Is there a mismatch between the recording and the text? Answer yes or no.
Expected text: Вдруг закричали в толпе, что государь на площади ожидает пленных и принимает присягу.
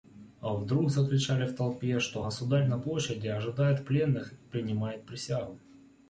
no